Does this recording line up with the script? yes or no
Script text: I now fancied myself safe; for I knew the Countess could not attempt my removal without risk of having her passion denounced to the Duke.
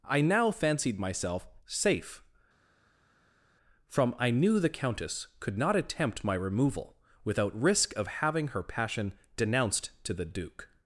no